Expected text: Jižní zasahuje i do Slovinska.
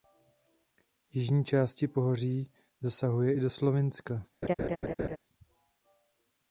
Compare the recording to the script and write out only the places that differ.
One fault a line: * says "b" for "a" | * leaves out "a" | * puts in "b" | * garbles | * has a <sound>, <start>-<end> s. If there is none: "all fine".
* puts in "části pohoří"
* has a laugh, 4.4-5.2 s